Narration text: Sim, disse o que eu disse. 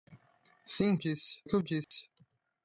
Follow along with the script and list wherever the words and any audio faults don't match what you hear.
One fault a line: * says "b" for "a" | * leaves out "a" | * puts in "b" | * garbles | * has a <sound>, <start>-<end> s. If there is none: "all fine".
* has a dropout, 1.8-1.9 s